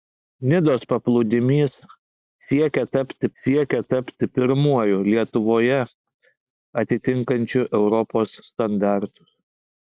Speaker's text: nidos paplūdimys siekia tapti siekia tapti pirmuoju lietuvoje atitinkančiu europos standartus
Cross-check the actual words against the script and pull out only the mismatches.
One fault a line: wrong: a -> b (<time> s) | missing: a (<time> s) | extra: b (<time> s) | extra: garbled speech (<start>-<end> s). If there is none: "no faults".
no faults